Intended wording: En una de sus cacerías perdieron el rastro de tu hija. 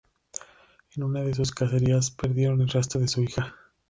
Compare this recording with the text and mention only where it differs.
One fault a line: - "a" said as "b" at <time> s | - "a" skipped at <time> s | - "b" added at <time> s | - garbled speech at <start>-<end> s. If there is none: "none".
- "tu" said as "su" at 3.1 s